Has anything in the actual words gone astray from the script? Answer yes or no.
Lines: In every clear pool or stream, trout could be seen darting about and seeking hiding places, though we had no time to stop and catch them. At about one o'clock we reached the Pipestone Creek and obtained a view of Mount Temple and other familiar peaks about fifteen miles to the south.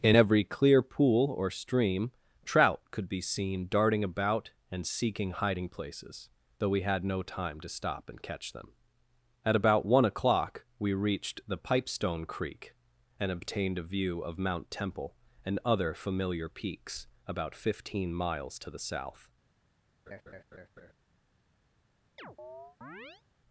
no